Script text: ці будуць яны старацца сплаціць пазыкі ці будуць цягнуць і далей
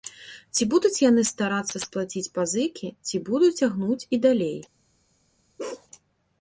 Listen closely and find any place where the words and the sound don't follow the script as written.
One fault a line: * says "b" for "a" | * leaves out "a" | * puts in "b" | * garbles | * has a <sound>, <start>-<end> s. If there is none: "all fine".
* has a bark, 5.6-5.9 s